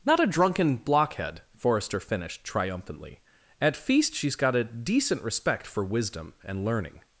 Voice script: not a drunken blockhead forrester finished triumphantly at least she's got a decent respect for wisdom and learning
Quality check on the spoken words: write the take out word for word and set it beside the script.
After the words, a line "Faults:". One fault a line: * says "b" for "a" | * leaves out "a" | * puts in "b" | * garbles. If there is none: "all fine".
not a drunken blockhead forrester finished triumphantly at feast she's got a decent respect for wisdom and learning
Faults:
* says "feast" for "least"